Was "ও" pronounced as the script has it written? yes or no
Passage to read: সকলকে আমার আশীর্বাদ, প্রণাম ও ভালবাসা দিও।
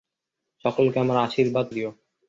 no